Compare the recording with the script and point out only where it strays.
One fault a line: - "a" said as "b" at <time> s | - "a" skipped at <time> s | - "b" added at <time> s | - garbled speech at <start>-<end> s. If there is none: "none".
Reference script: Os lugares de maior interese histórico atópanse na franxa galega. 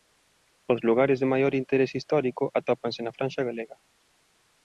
none